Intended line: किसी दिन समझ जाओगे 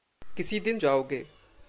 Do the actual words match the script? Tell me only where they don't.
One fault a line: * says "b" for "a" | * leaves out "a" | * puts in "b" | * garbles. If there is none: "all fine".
* leaves out "समझ"